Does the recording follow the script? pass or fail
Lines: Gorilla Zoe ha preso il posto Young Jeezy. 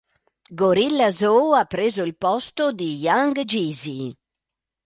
fail